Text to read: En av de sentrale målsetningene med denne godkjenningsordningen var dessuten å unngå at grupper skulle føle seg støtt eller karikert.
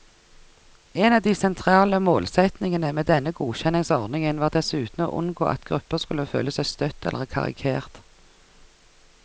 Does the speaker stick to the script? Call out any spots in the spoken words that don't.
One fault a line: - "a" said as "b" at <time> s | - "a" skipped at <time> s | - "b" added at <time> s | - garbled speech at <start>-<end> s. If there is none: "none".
none